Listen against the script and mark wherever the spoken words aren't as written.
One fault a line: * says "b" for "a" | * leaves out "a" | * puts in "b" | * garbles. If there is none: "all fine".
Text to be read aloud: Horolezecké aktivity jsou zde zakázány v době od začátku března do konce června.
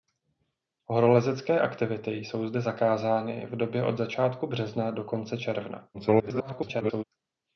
* garbles